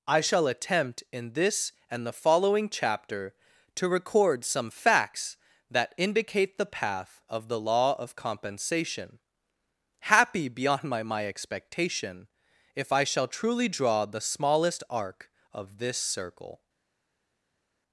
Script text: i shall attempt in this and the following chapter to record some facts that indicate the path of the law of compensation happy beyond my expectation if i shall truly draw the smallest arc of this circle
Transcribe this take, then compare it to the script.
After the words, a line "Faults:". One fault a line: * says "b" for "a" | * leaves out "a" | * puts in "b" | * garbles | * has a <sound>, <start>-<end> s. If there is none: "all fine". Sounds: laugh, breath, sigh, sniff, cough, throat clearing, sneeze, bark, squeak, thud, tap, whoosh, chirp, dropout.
i shall attempt in this and the following chapter to record some facts that indicate the path of the law of compensation happy beyond my my expectation if i shall truly draw the smallest arc of this circle
Faults:
* puts in "my"